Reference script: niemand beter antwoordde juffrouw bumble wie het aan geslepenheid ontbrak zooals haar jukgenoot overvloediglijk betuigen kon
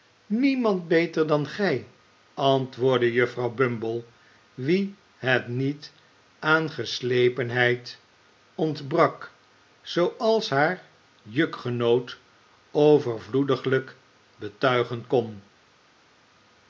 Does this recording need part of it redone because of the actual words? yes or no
yes